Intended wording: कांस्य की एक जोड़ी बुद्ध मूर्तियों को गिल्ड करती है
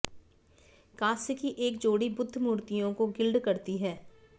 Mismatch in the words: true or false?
false